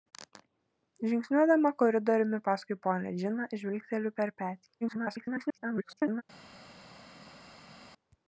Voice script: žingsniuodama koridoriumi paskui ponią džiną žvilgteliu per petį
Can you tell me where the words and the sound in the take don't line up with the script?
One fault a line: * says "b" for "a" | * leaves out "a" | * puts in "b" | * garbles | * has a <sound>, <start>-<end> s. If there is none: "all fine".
* garbles